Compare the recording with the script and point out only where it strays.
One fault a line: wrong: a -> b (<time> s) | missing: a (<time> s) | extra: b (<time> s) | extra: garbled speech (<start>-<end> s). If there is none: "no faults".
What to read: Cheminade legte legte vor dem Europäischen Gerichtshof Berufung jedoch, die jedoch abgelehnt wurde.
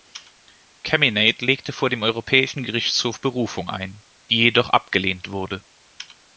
missing: legte (1.7 s)
wrong: jedoch -> ein (3.7 s)